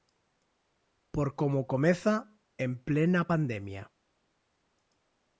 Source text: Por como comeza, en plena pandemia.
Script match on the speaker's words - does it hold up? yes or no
yes